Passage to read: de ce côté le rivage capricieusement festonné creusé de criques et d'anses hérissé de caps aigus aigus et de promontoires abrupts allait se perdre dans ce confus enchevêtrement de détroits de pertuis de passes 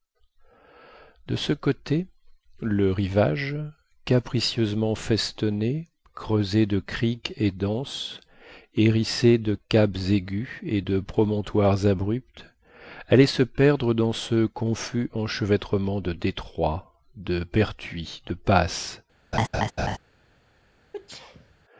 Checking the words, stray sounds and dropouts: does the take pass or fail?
fail